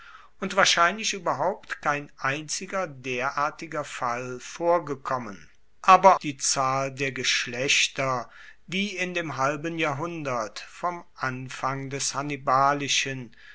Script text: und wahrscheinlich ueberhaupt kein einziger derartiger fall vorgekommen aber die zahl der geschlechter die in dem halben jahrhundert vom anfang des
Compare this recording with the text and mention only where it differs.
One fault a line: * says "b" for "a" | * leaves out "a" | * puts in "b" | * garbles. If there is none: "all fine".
all fine